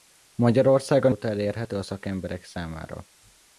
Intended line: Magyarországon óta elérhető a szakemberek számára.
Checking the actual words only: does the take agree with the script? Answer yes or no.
yes